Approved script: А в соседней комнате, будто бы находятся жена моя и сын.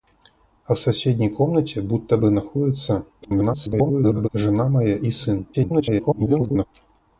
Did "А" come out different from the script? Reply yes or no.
no